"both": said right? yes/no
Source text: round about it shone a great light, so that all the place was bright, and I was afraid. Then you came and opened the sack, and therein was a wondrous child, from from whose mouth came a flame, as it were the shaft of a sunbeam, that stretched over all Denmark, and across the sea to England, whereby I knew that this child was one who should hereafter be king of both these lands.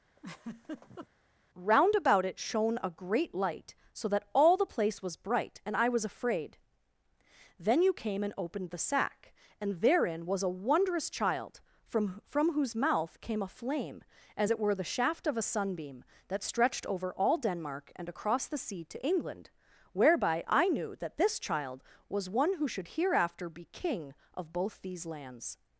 yes